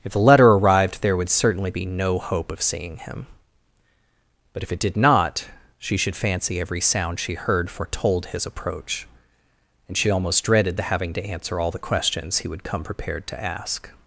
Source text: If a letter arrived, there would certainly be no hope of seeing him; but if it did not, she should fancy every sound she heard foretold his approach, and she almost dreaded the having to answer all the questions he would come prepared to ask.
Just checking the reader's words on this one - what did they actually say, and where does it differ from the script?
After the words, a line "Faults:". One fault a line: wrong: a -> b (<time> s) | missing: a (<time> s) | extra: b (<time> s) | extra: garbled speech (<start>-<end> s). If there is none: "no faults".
If the letter arrived, there would certainly be no hope of seeing him; but if it did not, she should fancy every sound she heard foretold his approach, and she almost dreaded the having to answer all the questions he would come prepared to ask.
Faults:
wrong: a -> the (0.1 s)